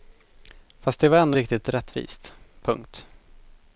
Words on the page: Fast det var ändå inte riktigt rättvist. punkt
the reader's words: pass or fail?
fail